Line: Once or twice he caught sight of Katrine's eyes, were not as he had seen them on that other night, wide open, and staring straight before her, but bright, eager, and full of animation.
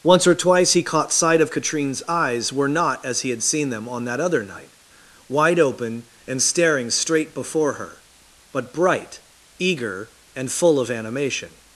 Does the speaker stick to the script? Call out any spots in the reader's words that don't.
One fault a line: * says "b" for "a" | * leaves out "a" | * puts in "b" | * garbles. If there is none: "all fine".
all fine